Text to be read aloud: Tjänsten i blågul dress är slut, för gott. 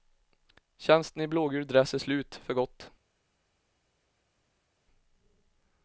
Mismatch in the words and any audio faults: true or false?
false